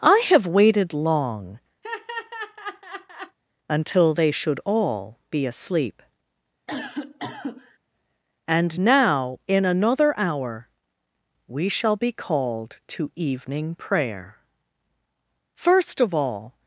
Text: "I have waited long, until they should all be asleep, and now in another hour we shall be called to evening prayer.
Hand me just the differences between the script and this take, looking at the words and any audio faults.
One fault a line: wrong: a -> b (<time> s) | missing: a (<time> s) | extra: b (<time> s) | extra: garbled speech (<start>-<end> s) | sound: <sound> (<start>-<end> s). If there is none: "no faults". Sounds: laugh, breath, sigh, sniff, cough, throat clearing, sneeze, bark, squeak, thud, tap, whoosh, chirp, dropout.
sound: laugh (1.8-3.4 s)
sound: cough (6.7-7.8 s)
extra: First of all (15.5 s)